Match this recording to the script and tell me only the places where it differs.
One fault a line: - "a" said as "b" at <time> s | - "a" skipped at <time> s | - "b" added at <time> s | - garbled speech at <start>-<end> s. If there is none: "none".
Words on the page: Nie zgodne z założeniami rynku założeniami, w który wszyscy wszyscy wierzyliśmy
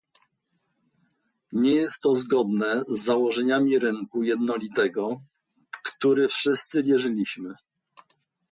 - "jest to" added at 1.7 s
- "założeniami" said as "jednolitego" at 4.2 s
- "wszyscy" skipped at 6.8 s